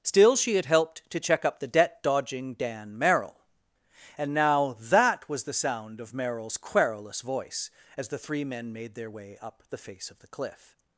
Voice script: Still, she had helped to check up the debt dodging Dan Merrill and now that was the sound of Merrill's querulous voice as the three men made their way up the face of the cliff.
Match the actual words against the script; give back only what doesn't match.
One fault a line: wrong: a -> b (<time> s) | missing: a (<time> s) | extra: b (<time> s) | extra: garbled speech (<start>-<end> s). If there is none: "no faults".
no faults